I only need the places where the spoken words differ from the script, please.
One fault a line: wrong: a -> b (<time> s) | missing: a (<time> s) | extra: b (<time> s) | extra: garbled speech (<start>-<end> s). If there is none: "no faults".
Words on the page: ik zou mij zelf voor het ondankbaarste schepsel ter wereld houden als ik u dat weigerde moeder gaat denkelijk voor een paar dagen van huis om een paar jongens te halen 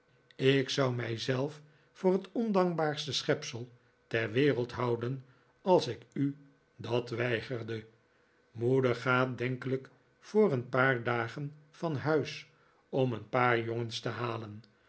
no faults